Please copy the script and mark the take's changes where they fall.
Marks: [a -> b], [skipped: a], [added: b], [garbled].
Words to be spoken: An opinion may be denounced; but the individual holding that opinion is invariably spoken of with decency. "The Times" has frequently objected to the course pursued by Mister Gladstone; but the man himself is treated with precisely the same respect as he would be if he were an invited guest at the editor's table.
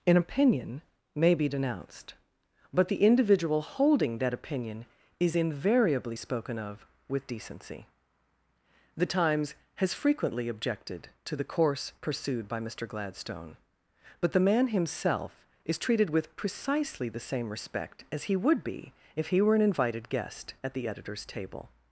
An opinion may be denounced; but the individual holding that opinion is invariably spoken of with decency. "The Times" has frequently objected to the course pursued by Mister Gladstone; but the man himself is treated with precisely the same respect as he would be if he were an invited guest at the editor's table.